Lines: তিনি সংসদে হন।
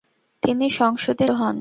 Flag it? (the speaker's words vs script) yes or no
no